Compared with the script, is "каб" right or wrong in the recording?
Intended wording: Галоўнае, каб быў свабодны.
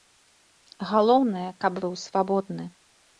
right